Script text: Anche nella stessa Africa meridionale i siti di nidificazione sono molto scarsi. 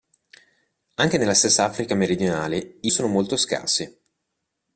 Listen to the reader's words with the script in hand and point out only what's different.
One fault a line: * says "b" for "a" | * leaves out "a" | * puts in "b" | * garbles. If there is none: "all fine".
* leaves out "siti di nidificazione"